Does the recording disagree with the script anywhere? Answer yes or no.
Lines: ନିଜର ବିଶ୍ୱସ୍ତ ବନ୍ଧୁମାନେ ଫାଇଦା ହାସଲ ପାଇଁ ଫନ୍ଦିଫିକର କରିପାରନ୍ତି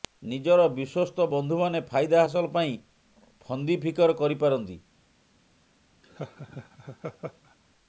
no